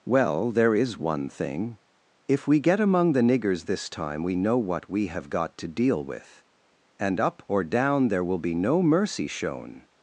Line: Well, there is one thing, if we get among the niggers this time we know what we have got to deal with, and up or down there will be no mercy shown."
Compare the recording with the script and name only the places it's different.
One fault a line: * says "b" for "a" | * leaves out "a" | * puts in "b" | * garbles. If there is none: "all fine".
all fine